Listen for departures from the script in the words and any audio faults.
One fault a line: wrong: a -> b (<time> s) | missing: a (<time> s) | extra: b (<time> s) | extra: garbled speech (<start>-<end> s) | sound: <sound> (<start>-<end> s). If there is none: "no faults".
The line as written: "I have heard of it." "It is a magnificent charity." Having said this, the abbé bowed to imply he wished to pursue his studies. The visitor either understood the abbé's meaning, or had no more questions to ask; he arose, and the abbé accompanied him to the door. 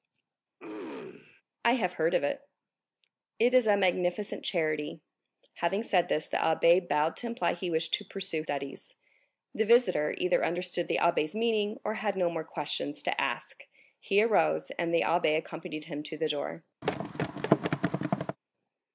sound: throat clearing (0.6-1.4 s)
missing: his (8.4 s)
sound: thud (16.8-18.4 s)